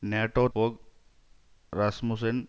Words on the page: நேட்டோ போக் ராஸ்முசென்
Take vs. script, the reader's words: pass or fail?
pass